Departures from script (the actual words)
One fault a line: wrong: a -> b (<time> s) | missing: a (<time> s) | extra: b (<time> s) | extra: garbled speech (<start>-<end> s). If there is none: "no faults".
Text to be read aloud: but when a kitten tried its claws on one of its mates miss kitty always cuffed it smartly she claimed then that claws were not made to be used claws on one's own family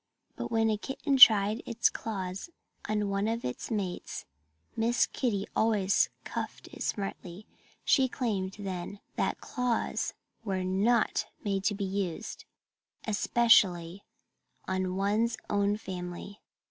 wrong: claws -> especially (13.1 s)